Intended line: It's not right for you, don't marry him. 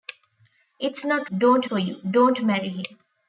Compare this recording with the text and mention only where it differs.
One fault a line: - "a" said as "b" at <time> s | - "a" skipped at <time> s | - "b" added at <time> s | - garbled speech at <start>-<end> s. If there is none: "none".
- "right" said as "don't" at 1.3 s